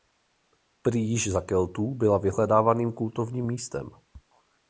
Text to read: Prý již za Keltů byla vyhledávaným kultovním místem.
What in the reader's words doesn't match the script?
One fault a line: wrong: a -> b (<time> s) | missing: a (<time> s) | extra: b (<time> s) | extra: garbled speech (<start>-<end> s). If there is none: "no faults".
no faults